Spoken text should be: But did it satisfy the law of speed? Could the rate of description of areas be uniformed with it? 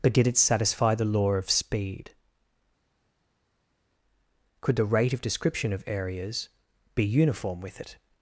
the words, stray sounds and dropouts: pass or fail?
fail